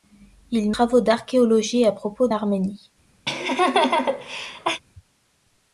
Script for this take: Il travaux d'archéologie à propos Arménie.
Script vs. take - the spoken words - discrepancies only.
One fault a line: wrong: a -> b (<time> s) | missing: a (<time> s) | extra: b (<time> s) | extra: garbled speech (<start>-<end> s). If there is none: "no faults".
no faults